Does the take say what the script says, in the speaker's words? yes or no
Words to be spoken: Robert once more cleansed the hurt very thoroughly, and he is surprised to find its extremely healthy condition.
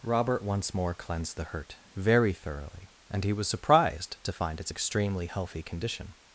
no